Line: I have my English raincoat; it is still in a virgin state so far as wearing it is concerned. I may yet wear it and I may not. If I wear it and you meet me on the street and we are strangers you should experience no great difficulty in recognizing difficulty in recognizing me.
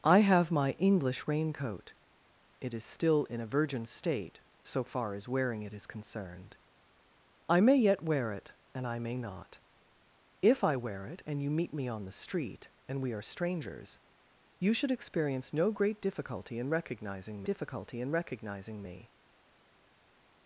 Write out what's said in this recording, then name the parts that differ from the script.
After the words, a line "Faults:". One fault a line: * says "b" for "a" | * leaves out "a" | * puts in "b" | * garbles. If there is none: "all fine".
I have my English raincoat; it is still in a virgin state so far as wearing it is concerned. I may yet wear it and I may not. If I wear it and you meet me on the street and we are strangers you should experience no great difficulty in recognizing difficulty in recognizing me.
Faults:
all fine